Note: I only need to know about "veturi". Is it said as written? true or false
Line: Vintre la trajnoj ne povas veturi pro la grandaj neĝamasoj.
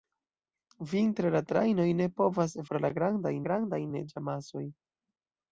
false